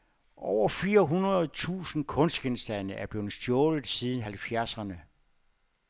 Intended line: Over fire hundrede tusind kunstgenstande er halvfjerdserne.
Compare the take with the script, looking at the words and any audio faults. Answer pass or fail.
fail